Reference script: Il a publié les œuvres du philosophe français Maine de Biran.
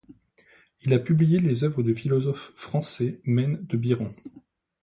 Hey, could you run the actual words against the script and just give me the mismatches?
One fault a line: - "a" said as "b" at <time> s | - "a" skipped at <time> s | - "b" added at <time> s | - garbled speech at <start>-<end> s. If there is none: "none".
none